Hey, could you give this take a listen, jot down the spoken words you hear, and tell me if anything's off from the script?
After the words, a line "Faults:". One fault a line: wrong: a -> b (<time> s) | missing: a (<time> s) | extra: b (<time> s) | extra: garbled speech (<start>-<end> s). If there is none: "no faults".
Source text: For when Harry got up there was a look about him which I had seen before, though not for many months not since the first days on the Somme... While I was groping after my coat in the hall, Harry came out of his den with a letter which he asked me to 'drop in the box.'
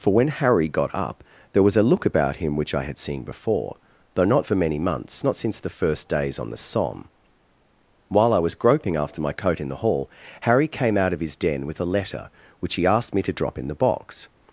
For when Harry got up there was a look about him which I had seen before, though not for many months not since the first days on the Somme... While I was groping after my coat in the hall, Harry came out of his den with a letter which he asked me to 'drop in the box.'
Faults:
no faults